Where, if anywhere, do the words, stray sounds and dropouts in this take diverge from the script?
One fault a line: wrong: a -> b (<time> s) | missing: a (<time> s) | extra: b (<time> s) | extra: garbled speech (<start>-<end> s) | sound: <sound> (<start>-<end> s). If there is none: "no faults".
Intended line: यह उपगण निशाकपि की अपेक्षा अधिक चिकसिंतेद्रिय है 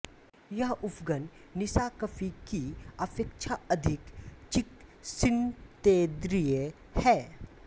no faults